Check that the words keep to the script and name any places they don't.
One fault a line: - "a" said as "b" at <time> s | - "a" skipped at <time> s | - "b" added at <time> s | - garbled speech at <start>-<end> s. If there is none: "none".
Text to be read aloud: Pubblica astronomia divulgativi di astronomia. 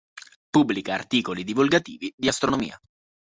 - "astronomia" said as "articoli" at 0.9 s